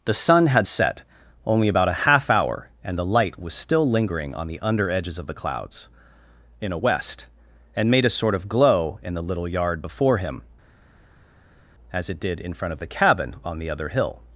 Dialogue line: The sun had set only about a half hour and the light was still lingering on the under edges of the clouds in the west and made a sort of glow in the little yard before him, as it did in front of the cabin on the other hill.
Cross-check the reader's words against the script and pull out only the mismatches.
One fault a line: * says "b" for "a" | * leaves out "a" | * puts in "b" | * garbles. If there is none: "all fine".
* says "a" for "the"